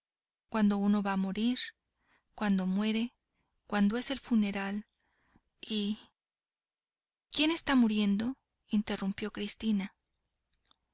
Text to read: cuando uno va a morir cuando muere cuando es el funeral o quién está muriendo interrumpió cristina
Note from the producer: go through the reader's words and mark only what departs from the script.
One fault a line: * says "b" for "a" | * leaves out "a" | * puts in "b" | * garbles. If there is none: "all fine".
* says "y" for "o"